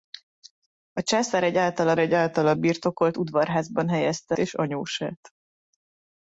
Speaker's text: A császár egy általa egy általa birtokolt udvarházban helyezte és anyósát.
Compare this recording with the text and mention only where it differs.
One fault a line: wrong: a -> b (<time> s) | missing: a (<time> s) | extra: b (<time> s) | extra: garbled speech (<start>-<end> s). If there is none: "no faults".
no faults